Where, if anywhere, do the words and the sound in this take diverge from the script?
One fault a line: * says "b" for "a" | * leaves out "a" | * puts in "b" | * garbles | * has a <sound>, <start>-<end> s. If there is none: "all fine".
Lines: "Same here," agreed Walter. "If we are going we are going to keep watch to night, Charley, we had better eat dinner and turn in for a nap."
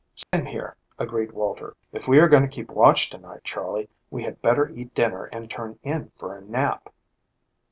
* has a dropout, 0.2-0.3 s
* leaves out "we are going"